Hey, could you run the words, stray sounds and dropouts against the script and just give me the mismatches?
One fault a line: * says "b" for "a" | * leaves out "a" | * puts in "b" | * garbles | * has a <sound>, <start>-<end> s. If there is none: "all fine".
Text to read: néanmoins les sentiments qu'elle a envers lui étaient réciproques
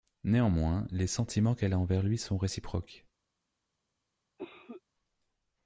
* says "sont" for "étaient"
* has a cough, 4.4-4.8 s